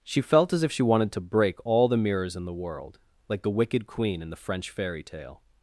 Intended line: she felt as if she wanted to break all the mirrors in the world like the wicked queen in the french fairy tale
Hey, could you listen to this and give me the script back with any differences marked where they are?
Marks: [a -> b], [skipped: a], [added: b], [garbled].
she felt as if she wanted to break all the mirrors in the world like the wicked queen in the french fairy tale